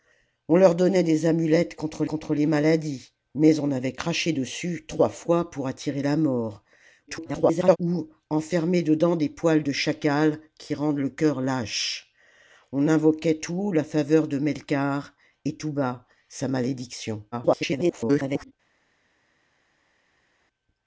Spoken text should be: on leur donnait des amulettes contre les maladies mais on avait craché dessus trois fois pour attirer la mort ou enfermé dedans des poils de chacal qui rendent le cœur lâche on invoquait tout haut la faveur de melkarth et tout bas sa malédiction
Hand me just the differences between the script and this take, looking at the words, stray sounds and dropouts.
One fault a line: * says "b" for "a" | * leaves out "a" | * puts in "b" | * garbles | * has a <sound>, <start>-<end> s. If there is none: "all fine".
* puts in "contre"
* garbles
* garbles